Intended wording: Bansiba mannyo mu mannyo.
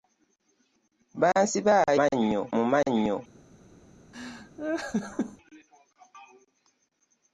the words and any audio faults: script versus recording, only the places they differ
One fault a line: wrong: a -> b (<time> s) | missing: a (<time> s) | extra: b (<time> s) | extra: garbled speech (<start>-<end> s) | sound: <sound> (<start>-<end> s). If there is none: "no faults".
sound: laugh (4.1-5.4 s)